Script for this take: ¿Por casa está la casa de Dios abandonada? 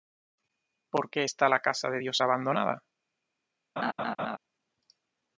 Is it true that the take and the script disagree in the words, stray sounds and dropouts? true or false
true